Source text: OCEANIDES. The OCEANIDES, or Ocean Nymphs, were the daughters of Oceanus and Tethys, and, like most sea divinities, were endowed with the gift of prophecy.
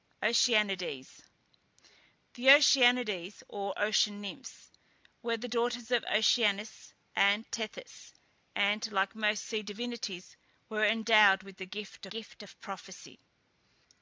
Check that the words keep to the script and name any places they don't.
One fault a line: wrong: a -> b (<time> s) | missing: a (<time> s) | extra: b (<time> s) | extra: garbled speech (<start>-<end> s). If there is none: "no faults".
extra: gift (12.1 s)